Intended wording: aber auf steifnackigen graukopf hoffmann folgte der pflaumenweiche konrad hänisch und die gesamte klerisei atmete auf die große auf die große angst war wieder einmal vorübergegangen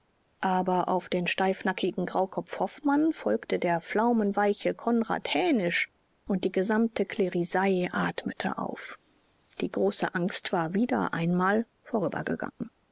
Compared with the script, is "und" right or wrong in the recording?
right